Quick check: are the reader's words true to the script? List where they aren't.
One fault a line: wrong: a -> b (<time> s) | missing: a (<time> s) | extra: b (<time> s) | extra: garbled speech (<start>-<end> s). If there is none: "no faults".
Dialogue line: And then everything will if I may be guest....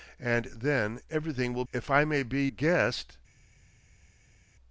no faults